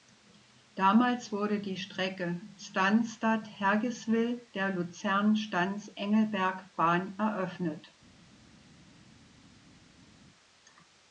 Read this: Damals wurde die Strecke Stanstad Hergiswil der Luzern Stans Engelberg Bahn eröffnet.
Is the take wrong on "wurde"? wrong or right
right